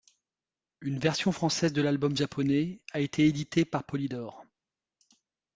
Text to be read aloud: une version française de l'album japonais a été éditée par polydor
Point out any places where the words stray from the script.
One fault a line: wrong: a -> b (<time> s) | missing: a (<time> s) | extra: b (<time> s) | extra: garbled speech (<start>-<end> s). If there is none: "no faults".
no faults